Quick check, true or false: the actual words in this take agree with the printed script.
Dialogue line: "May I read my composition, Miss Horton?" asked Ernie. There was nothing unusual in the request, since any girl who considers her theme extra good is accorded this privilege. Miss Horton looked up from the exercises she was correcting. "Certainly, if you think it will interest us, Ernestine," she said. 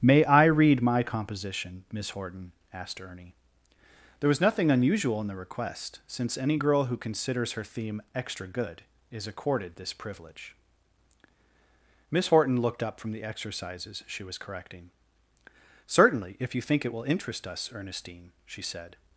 true